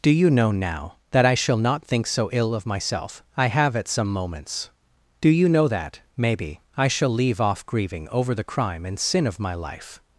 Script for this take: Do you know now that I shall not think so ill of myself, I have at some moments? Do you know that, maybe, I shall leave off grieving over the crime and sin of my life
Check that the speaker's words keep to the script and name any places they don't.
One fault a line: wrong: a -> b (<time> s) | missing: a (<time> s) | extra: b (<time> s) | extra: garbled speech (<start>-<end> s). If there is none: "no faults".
no faults